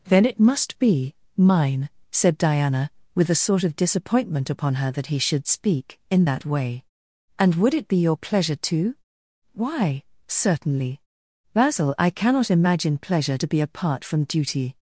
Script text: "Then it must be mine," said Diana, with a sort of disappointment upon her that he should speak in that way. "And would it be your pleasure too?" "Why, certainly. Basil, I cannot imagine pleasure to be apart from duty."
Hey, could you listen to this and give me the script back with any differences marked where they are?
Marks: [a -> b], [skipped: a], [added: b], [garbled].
"Then it must be mine," said Diana, with a sort of disappointment upon her that he should speak in that way. "And would it be your pleasure too?" "Why, certainly. Basil, I cannot imagine pleasure to be apart from duty."